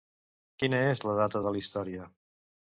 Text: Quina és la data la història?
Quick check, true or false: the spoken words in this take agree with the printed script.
false